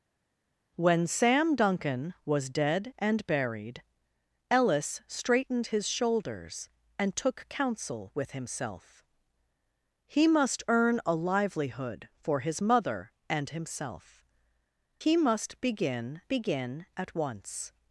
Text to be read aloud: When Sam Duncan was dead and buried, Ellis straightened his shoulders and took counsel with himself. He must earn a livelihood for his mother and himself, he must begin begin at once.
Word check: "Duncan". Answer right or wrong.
right